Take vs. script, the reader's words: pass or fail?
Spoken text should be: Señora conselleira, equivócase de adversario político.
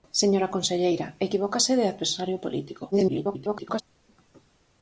fail